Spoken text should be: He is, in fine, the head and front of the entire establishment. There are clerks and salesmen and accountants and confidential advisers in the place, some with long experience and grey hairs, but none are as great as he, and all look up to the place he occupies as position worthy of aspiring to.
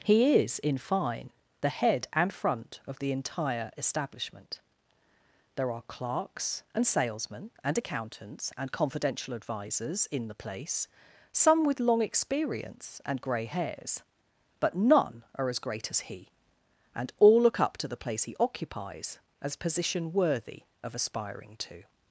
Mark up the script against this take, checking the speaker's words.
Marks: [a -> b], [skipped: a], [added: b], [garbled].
He is, in fine, the head and front of the entire establishment. There are clerks and salesmen and accountants and confidential advisers in the place, some with long experience and grey hairs, but none are as great as he, and all look up to the place he occupies as position worthy of aspiring to.